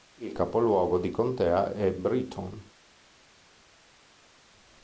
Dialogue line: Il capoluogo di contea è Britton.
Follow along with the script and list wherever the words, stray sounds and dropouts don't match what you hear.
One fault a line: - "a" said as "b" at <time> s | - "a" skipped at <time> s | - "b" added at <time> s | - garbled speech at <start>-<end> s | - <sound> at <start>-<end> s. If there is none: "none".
none